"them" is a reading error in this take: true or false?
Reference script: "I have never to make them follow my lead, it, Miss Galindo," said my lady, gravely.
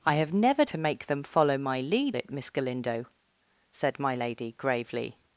false